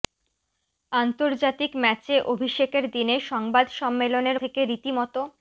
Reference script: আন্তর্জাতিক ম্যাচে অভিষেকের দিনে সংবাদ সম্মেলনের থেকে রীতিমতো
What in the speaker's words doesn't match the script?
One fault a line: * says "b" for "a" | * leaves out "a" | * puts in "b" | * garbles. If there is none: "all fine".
all fine